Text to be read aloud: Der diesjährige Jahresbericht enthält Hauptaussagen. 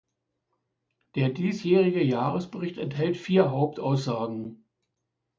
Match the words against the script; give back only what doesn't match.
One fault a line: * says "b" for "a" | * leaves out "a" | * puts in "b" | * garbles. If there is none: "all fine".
* puts in "vier"